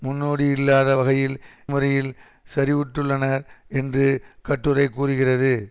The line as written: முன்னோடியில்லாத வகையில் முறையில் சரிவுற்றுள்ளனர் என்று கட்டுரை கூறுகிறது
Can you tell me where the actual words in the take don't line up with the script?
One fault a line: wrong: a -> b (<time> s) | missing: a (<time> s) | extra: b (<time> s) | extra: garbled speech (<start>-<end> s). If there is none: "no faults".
no faults